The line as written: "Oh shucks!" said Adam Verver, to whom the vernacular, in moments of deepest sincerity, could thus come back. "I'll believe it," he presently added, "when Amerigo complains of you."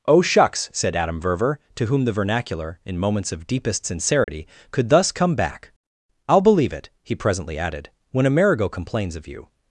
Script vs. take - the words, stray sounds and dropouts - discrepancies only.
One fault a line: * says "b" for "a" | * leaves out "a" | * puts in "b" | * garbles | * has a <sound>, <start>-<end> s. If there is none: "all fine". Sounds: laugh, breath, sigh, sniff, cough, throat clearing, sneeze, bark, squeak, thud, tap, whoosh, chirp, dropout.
* has a dropout, 4.2-4.3 s